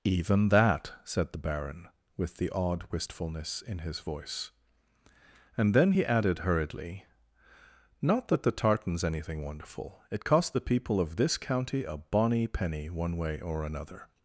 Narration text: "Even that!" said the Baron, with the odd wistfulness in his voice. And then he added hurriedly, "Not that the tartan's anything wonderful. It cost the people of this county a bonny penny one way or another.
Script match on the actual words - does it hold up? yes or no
yes